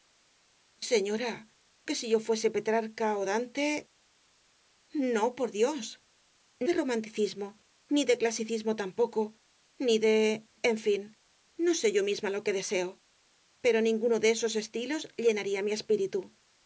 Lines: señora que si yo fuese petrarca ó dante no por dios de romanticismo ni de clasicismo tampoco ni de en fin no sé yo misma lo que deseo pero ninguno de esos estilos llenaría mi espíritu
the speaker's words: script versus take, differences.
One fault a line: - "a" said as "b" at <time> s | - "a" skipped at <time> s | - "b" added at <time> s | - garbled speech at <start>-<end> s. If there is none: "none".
none